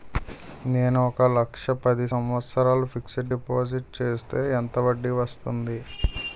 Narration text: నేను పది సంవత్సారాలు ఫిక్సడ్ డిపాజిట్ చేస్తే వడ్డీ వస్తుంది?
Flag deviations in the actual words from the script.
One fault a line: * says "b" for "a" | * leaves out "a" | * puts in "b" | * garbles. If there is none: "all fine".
* puts in "ఒక లక్ష"
* puts in "ఎంత"